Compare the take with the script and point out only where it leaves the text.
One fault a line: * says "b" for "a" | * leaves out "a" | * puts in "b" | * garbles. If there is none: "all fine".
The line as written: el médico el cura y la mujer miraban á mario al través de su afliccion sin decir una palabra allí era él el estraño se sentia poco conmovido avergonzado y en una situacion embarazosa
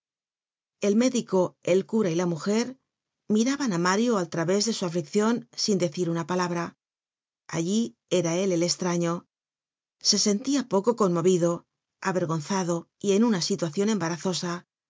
all fine